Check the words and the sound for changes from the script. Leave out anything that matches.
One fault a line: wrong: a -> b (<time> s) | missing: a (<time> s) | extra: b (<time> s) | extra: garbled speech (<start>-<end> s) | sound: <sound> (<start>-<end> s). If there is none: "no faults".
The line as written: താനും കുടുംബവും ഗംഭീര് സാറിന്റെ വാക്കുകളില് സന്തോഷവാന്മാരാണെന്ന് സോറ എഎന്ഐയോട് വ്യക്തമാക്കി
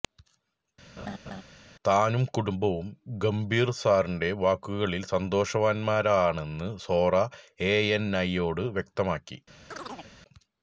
sound: laugh (1.0-1.4 s)
sound: chirp (9.7-10.1 s)